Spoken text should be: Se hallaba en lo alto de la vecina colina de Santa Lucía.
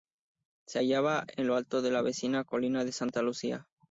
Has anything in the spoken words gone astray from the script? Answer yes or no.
no